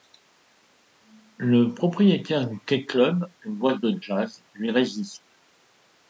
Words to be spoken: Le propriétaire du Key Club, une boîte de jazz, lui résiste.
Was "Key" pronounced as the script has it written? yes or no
yes